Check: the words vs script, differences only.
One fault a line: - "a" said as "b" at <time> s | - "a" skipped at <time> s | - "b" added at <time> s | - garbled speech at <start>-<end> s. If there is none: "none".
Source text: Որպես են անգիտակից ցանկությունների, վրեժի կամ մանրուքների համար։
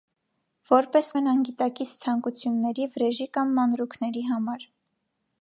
none